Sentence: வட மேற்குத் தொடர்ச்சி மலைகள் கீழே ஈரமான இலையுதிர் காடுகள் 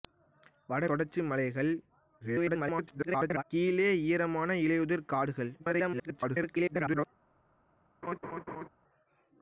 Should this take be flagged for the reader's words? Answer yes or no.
yes